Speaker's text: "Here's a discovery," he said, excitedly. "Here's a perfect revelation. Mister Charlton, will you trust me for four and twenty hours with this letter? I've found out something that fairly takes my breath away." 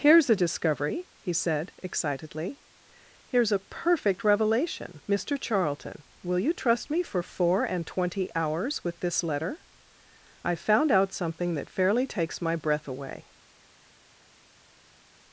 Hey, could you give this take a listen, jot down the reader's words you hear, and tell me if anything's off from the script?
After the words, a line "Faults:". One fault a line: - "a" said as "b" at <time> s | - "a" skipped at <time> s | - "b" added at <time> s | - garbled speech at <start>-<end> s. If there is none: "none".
"Here's a discovery," he said, excitedly. "Here's a perfect revelation. Mister Charlton, will you trust me for four and twenty hours with this letter? I've found out something that fairly takes my breath away."
Faults:
none